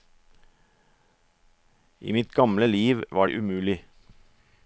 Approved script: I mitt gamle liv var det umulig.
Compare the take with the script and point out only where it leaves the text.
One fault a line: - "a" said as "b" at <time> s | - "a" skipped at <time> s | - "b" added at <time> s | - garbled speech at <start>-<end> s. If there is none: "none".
none